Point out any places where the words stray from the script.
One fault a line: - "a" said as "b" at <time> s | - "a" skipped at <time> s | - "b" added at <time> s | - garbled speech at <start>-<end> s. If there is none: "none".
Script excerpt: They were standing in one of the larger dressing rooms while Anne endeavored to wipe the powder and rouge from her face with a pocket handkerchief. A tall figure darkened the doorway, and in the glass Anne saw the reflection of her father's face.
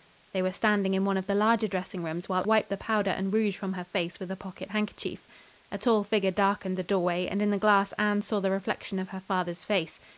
- "Anne endeavored to" skipped at 2.5 s